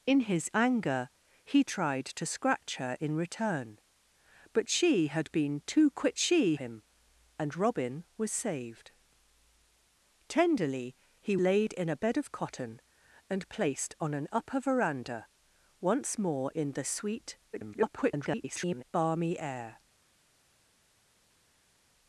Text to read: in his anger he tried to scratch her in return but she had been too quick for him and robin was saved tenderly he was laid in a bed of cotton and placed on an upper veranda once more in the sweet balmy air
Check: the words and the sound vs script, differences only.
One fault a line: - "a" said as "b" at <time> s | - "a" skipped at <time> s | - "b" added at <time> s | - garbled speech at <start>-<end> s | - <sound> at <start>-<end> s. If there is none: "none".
- "for" said as "she" at 6.2 s
- "was" skipped at 11.4 s
- garbled speech at 17.5-18.8 s